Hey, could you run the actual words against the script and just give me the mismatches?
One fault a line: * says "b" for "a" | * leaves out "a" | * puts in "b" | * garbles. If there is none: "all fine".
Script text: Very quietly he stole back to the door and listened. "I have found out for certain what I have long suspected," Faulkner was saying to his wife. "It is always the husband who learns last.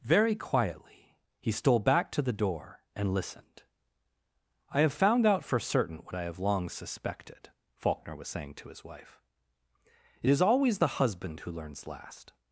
all fine